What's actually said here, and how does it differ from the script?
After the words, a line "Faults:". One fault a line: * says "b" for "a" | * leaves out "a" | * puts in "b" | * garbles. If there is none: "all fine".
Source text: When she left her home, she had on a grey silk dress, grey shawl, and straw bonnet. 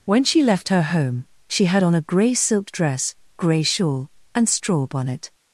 When she left her home, she had on a grey silk dress, grey shawl, and straw bonnet.
Faults:
all fine